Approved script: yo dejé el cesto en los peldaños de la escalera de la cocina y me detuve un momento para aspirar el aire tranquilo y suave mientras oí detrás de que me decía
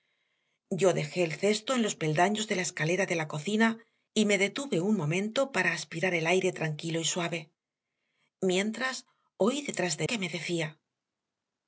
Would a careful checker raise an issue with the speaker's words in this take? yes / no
no